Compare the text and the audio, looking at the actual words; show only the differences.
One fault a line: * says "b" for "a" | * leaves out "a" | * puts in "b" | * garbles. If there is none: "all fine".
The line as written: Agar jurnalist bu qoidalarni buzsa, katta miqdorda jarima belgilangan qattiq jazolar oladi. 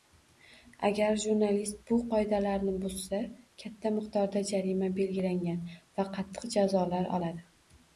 * puts in "va"